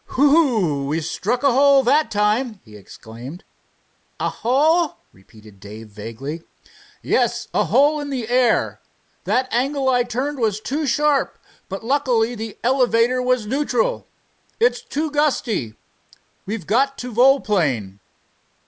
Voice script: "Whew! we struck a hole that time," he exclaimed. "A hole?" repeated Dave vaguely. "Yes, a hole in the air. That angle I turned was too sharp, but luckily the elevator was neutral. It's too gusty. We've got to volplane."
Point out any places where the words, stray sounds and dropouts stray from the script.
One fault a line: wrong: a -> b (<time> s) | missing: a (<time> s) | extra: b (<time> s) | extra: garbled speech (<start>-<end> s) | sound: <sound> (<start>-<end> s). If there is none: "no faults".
no faults